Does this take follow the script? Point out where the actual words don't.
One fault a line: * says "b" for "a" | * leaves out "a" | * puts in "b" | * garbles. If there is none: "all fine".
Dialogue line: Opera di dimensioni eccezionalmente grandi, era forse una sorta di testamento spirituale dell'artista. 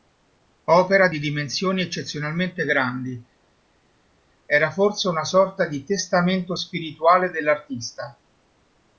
all fine